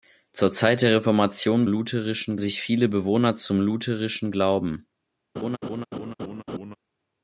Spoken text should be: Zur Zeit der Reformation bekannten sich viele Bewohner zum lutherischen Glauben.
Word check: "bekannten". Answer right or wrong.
wrong